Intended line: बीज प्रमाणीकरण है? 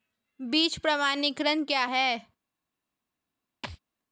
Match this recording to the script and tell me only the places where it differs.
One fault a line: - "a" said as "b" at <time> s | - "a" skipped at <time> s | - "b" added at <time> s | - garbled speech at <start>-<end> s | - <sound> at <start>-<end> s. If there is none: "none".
- "क्या" added at 1.6 s
- thud at 3.6-3.8 s